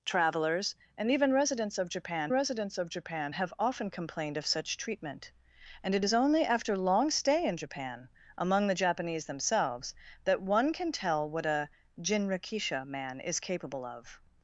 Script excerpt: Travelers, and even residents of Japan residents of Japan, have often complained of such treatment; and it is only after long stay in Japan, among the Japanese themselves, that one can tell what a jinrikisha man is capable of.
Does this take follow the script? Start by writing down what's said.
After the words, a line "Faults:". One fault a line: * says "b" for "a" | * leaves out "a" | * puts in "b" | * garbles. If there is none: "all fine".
Travelers, and even residents of Japan residents of Japan, have often complained of such treatment; and it is only after long stay in Japan, among the Japanese themselves, that one can tell what a jinrikisha man is capable of.
Faults:
all fine